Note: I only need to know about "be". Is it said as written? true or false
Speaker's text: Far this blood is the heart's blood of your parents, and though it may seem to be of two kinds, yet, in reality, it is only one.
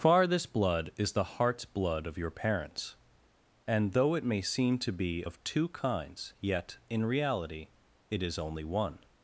true